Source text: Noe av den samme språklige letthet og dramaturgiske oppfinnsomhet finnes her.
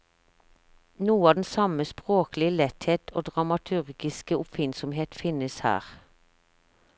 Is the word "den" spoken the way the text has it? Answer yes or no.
yes